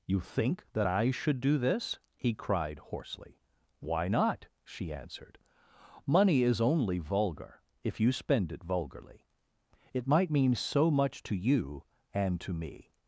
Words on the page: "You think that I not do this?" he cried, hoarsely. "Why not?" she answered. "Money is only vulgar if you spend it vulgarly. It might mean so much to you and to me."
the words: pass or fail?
fail